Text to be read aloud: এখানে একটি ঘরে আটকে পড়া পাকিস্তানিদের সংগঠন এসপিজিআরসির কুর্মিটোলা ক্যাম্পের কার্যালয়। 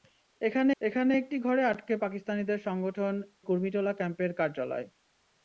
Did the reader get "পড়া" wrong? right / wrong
wrong